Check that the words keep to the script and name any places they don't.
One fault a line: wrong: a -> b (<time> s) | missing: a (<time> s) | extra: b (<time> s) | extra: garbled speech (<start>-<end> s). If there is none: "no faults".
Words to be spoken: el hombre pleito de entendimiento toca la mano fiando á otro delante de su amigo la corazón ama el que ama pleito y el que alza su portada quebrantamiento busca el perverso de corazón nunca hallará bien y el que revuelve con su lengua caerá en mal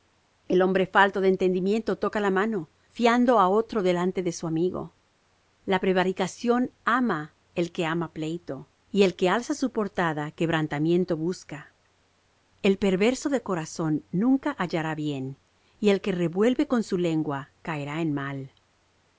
wrong: pleito -> falto (0.9 s)
wrong: corazón -> prevaricación (5.8 s)